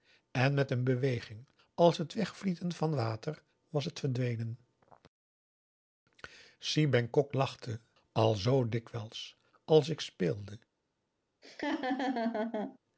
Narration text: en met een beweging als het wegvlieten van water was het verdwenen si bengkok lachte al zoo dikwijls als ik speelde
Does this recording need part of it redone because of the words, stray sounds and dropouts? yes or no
yes